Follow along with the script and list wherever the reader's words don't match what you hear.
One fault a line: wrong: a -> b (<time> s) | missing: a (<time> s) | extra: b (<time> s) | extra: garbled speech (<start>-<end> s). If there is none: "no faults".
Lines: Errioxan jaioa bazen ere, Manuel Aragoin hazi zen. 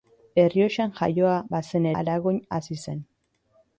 missing: ere Manuel (1.9 s)